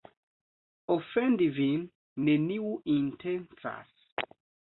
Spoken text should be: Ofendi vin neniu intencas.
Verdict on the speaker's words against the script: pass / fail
pass